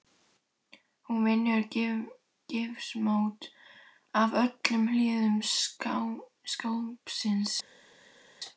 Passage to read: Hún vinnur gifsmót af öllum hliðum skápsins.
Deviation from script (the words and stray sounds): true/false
false